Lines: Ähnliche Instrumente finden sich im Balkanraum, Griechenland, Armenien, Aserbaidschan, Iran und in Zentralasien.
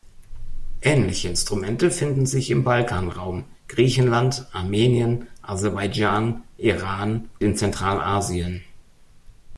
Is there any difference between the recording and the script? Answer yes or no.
yes